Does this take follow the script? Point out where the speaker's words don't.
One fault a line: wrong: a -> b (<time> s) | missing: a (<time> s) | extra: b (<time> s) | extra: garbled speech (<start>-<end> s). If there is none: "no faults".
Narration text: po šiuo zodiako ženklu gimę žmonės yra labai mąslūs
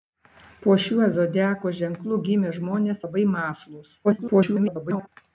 missing: yra (3.0 s)
extra: garbled speech (4.0-5.1 s)